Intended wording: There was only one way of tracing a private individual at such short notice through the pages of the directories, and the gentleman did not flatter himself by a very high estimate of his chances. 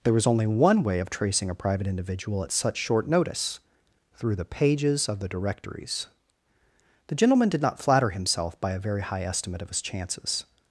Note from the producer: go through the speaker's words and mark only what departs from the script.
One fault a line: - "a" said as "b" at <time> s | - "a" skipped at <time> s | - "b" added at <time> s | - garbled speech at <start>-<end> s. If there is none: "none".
- "and" skipped at 6.1 s